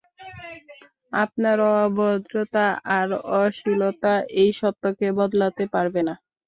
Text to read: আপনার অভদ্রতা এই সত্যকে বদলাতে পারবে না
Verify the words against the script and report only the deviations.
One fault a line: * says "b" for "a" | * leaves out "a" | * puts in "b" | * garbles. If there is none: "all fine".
* puts in "আর অশ্লীলতা"